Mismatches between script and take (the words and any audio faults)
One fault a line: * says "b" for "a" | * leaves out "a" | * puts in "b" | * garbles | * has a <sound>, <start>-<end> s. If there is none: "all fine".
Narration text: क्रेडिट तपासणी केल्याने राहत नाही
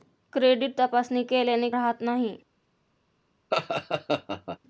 * has a laugh, 3.5-4.6 s